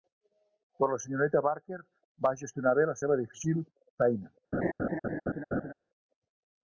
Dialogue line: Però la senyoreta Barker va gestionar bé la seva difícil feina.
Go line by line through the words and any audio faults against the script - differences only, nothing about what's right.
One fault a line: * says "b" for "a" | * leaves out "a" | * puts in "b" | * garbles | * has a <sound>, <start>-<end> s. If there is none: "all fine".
* has a laugh, 4.5-5.7 s